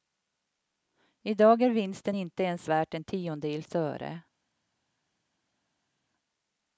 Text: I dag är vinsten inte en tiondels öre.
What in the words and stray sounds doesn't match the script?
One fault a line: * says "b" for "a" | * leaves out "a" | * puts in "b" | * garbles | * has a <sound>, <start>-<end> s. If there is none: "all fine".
* puts in "ens värt"